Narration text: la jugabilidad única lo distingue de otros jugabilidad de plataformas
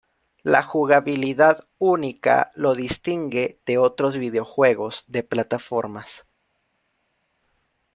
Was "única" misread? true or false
false